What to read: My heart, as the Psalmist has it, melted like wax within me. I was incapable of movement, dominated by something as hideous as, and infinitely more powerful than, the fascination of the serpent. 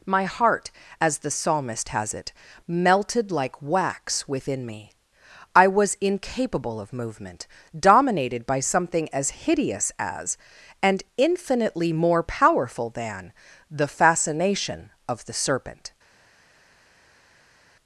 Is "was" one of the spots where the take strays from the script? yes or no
no